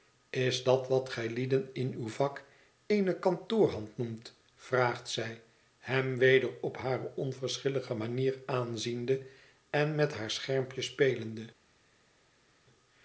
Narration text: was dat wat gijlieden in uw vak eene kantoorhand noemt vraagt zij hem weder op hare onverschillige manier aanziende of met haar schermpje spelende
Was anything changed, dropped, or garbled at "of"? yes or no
yes